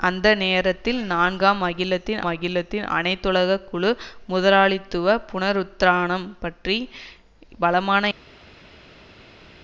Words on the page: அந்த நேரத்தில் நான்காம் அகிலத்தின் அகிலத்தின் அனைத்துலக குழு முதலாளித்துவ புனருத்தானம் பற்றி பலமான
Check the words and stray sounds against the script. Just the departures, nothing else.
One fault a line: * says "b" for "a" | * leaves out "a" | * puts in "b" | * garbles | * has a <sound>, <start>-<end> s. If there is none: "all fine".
all fine